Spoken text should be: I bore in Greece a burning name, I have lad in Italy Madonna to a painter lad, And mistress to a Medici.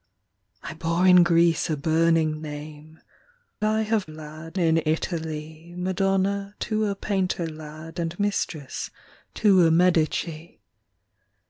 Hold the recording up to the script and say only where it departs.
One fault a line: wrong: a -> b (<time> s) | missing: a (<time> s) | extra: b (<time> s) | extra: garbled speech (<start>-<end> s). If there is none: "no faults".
no faults